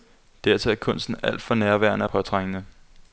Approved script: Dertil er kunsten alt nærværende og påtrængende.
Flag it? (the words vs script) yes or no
yes